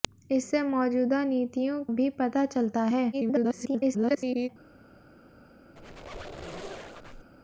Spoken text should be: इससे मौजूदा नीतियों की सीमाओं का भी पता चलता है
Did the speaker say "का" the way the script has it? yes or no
no